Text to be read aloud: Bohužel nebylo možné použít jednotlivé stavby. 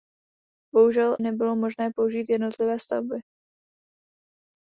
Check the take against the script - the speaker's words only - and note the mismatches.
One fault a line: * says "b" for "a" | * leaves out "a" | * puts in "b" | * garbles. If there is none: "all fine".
all fine